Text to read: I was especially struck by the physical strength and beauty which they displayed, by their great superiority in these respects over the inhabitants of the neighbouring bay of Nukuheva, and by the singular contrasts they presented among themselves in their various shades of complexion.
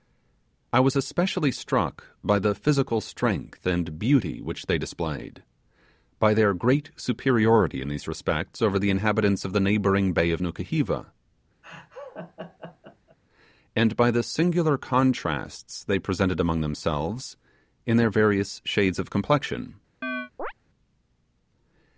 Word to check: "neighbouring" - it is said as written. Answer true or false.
true